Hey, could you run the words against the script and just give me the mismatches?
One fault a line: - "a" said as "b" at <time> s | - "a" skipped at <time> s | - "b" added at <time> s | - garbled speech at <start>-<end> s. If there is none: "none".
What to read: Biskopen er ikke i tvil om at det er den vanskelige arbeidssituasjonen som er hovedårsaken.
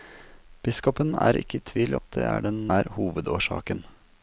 - "om" skipped at 1.9 s
- "vanskelige arbeidssituasjonen som" skipped at 2.6 s